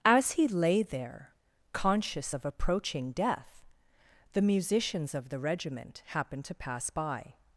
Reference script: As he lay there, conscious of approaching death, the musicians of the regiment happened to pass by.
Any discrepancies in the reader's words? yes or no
no